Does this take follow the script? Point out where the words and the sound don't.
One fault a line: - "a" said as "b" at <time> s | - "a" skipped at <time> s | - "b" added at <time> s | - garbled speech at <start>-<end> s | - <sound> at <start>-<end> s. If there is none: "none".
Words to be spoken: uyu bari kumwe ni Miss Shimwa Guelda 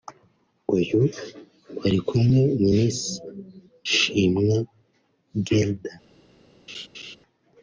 - laugh at 6.7-7.2 s